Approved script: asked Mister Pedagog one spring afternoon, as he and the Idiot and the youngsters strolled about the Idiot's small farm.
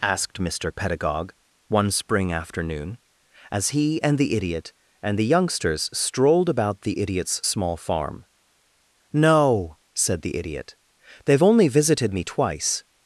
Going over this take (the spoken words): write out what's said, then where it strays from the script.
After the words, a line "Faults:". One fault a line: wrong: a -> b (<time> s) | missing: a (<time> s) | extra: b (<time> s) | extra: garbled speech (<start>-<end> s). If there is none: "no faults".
asked Mister Pedagog one spring afternoon, as he and the Idiot and the youngsters strolled about the Idiot's small farm. "No," said the Idiot. "They've only visited me twice
Faults:
extra: No said the Idiot They've only visited me twice (9.1 s)